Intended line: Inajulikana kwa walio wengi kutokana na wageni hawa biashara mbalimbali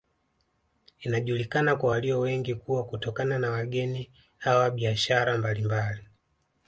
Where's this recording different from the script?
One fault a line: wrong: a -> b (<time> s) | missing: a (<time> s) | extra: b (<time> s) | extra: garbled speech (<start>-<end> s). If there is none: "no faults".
extra: kuwa (2.5 s)